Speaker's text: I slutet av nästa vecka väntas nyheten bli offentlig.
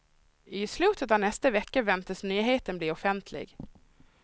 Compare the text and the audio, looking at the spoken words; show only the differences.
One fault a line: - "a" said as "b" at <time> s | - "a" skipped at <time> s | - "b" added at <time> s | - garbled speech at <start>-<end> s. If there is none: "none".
none